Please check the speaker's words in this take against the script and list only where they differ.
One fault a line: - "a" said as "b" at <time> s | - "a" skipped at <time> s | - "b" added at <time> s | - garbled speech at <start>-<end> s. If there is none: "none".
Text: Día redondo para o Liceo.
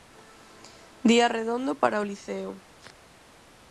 none